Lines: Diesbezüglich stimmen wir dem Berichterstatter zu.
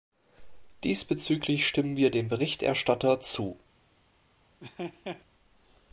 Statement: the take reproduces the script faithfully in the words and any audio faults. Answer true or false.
false